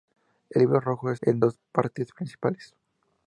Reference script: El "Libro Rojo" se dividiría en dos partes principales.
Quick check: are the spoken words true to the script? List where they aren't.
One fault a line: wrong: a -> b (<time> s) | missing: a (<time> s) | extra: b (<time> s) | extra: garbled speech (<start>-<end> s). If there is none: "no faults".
missing: se dividiría (1.1 s)